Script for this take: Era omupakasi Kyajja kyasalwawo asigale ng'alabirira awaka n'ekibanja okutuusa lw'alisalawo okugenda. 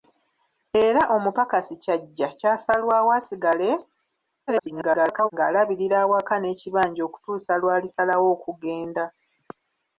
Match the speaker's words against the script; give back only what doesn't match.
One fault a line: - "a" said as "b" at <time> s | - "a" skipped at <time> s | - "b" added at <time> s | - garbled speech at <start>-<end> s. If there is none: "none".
- garbled speech at 4.5-5.3 s